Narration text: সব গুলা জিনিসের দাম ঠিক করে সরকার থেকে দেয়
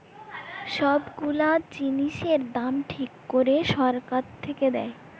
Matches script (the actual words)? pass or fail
pass